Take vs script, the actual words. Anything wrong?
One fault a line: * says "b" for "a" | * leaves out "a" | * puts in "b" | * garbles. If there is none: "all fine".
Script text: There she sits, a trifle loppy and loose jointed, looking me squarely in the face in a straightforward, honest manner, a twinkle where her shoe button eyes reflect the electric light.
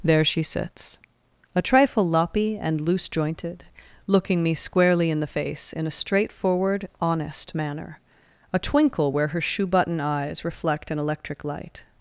* says "an" for "the"